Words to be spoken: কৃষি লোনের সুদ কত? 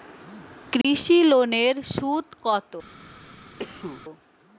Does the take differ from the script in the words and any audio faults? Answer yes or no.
yes